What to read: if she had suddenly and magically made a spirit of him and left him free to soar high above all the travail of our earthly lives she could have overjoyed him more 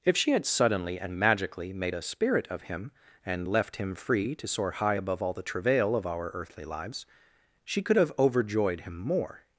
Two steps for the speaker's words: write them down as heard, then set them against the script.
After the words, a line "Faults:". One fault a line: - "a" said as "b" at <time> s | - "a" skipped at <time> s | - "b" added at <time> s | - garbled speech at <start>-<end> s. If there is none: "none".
if she had suddenly and magically made a spirit of him and left him free to soar high above all the travail of our earthly lives she could have overjoyed him more
Faults:
none